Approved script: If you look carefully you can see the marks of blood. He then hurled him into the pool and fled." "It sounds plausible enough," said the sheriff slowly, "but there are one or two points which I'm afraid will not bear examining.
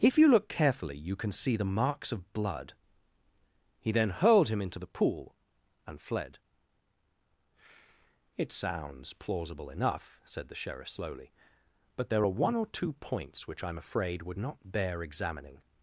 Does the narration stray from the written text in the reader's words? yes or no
yes